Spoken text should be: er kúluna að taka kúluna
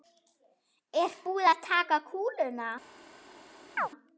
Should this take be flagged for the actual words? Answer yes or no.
yes